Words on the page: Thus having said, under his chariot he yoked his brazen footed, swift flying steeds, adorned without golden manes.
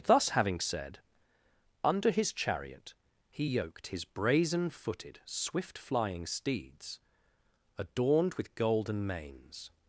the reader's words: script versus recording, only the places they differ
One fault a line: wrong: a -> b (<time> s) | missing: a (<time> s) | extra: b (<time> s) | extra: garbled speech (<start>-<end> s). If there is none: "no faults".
wrong: without -> with (8.3 s)